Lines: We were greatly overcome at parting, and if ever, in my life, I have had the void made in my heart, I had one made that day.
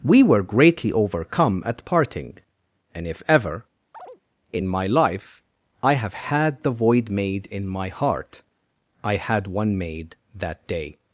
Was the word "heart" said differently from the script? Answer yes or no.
no